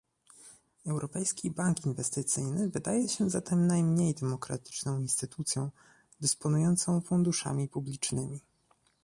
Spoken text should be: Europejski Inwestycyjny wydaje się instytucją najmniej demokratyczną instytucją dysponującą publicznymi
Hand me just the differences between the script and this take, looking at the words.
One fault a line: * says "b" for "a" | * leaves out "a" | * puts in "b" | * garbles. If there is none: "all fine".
* puts in "Bank"
* says "zatem" for "instytucją"
* puts in "funduszami"